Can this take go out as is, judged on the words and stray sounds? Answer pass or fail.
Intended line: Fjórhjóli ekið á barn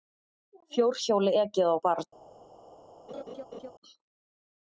fail